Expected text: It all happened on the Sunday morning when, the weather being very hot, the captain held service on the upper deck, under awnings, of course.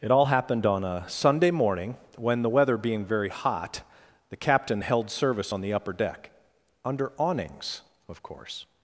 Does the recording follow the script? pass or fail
fail